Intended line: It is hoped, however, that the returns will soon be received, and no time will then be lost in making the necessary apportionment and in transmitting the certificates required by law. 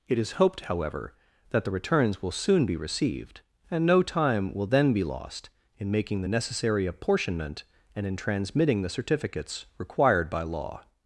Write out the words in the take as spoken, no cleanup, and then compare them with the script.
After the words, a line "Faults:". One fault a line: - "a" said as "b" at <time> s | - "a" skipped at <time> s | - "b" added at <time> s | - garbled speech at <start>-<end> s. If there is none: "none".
It is hoped, however, that the returns will soon be received, and no time will then be lost in making the necessary apportionment and in transmitting the certificates required by law.
Faults:
none